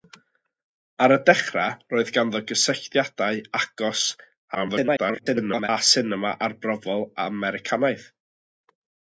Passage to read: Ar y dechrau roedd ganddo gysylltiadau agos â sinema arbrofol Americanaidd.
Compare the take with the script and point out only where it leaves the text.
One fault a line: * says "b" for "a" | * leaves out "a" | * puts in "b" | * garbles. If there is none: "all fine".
* garbles